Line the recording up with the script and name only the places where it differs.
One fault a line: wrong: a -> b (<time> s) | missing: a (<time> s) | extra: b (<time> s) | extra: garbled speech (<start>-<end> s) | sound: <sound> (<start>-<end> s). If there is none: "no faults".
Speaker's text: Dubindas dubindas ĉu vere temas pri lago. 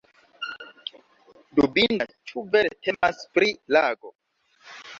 missing: dubindas (2.2 s)
sound: dropout (3.0-3.0 s)